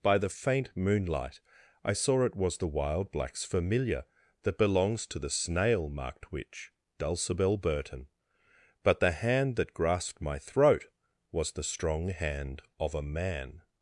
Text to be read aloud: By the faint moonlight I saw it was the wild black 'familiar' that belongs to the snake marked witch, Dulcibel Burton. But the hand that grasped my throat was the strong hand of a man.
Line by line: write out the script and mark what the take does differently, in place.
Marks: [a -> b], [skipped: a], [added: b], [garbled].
By the faint moonlight I saw it was the wild [black -> blacks] 'familiar' that belongs to the [snake -> snail] marked witch, Dulcibel Burton. But the hand that grasped my throat was the strong hand of a man.